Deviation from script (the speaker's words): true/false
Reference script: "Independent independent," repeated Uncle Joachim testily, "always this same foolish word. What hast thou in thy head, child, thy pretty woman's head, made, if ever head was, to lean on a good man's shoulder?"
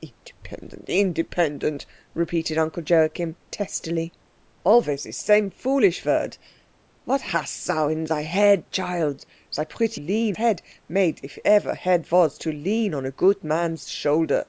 true